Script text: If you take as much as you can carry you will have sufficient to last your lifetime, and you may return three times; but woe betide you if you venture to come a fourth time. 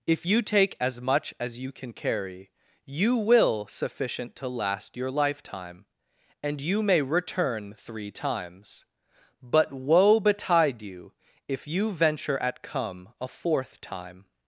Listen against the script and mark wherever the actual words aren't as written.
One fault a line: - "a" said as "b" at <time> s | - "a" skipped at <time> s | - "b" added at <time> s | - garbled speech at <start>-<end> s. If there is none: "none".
- "have" skipped at 3.7 s
- "to" said as "at" at 12.4 s